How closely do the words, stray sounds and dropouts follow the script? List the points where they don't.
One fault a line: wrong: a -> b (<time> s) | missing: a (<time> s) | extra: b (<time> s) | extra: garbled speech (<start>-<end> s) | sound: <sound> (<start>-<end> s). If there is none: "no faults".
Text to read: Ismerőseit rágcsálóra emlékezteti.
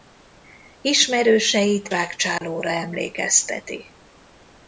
sound: dropout (2.4-2.4 s)